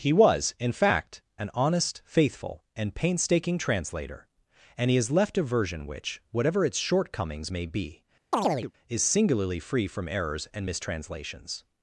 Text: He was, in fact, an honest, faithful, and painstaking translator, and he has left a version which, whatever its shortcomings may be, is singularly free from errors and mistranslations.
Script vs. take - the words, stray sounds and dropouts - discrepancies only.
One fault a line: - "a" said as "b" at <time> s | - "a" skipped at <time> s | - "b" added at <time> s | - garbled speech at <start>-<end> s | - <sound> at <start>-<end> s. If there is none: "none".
- chirp at 8.3-8.7 s